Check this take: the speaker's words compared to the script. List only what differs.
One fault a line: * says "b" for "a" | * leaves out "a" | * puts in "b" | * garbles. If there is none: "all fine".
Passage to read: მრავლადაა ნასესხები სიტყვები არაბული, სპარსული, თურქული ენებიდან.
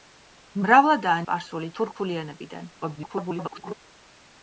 * leaves out "ნასესხები სიტყვები არაბული"
* garbles